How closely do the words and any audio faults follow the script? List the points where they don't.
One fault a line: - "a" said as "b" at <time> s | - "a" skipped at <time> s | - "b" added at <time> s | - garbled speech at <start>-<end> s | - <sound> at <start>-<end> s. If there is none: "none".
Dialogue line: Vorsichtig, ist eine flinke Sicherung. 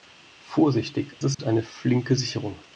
- dropout at 1.3-1.4 s